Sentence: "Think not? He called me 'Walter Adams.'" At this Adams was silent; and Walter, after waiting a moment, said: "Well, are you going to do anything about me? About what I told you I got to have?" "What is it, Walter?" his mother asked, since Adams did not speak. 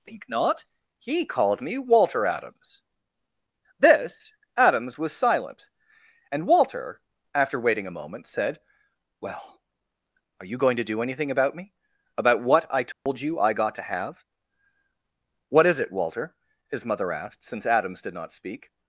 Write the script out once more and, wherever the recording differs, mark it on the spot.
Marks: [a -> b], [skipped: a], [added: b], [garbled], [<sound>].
"Think not? He called me 'Walter Adams.'" [skipped: At] this Adams was silent; and Walter, after waiting a moment, said: "Well, are you going to do anything about me? About what I told [dropout] you I got to have?" "What is it, Walter?" his mother asked, since Adams did not speak.